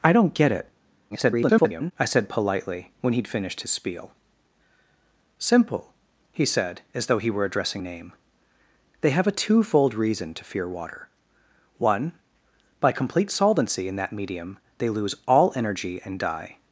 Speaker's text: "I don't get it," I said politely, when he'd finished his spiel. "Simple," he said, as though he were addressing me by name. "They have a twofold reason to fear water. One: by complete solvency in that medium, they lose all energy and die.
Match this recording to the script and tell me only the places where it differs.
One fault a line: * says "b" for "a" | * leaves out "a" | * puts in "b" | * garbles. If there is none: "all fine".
* garbles
* leaves out "me by"